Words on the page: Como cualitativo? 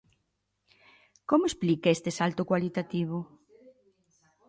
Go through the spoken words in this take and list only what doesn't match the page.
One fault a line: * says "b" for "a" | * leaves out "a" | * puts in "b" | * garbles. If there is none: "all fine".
* puts in "explica este salto"